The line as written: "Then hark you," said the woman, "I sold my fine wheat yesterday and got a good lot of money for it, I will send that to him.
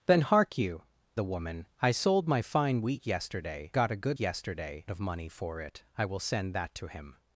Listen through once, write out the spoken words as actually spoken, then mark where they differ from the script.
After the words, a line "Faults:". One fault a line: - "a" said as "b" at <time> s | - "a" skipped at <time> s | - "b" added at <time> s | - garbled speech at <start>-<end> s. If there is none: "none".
"Then hark you," the woman, "I sold my fine wheat yesterday got a good yesterday of money for it, I will send that to him.
Faults:
- "said" skipped at 0.8 s
- "and" skipped at 3.7 s
- "lot" said as "yesterday" at 4.2 s